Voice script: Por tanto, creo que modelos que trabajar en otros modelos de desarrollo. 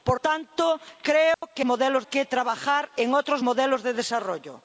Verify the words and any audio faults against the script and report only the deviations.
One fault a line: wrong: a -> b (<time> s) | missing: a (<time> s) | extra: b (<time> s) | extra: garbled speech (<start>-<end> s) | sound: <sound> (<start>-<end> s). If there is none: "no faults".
sound: dropout (1.3-1.4 s)